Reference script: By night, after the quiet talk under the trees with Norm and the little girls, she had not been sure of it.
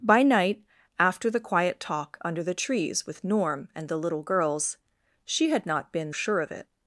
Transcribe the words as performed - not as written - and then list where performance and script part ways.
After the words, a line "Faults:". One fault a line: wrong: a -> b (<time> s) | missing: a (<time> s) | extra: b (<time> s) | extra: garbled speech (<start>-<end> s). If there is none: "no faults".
By night, after the quiet talk under the trees with Norm and the little girls, she had not been sure of it.
Faults:
no faults